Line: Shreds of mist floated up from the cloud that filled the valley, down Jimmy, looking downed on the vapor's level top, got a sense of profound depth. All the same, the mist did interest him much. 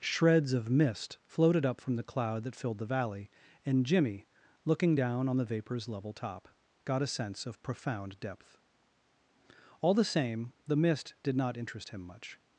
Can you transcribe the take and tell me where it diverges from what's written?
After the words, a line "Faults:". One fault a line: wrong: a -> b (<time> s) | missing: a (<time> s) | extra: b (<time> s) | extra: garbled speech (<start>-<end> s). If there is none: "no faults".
Shreds of mist floated up from the cloud that filled the valley, and Jimmy, looking down on the vapor's level top, got a sense of profound depth. All the same, the mist did not interest him much.
Faults:
wrong: down -> and (3.6 s)
wrong: downed -> down (4.9 s)
extra: not (11.4 s)